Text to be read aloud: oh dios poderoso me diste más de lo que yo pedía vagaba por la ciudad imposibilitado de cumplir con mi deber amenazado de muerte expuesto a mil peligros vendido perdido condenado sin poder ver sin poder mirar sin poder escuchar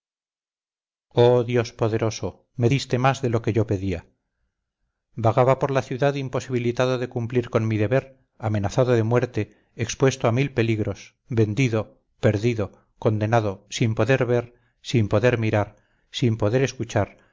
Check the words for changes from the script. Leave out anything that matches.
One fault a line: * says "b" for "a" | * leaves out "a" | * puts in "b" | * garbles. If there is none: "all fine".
all fine